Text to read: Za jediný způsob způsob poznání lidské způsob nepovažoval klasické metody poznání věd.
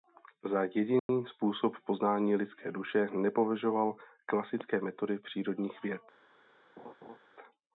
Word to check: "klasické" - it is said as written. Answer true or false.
true